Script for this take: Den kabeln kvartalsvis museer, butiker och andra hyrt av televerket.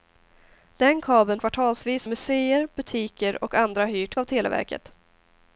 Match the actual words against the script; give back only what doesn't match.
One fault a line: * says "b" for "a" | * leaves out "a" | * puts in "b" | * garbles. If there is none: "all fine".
all fine